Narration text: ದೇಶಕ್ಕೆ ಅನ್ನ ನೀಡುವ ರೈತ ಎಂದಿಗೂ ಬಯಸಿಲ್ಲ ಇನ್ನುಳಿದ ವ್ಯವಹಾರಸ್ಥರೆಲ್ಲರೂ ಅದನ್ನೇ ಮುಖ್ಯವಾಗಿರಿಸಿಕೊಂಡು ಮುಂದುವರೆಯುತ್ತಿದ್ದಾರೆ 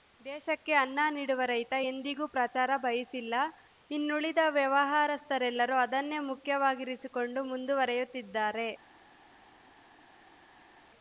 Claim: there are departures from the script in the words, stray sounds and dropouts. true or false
true